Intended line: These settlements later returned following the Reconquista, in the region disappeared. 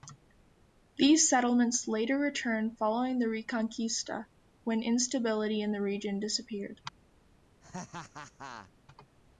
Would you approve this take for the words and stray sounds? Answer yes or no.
no